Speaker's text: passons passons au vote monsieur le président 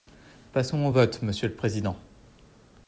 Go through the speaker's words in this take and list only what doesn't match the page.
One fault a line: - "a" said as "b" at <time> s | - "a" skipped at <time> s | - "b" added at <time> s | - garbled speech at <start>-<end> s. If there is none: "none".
- "passons" skipped at 0.8 s